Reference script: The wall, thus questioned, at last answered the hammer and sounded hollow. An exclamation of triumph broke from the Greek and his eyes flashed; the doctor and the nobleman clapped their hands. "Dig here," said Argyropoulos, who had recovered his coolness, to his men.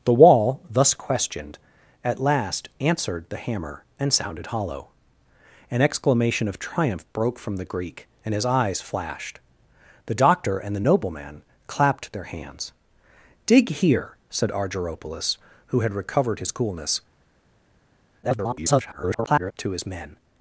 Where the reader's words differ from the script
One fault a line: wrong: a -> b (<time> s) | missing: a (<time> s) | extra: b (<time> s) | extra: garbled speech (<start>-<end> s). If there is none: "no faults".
extra: garbled speech (18.2-19.5 s)